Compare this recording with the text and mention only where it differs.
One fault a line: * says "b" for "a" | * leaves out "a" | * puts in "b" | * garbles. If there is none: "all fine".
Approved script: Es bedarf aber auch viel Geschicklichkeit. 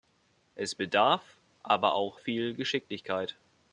all fine